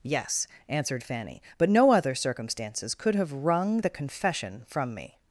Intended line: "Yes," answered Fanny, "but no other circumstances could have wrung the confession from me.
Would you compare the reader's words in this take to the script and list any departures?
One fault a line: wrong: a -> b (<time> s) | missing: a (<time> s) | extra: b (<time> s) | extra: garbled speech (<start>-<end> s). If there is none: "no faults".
no faults